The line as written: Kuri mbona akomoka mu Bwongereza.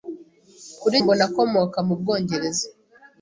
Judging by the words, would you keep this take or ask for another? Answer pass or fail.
pass